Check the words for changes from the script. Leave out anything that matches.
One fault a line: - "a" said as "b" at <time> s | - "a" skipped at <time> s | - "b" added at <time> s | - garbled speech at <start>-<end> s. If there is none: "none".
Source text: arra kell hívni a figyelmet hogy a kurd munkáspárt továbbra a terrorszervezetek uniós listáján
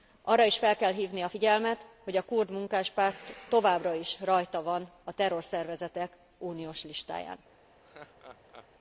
- "is fel" added at 0.5 s
- "is rajta van" added at 3.9 s